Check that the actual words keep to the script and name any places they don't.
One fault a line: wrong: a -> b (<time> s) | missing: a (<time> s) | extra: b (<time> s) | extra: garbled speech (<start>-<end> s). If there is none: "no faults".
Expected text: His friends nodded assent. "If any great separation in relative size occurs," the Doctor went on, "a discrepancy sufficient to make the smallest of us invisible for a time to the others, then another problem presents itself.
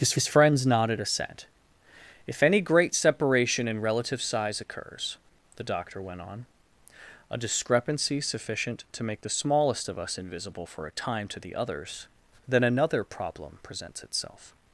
extra: his (0.2 s)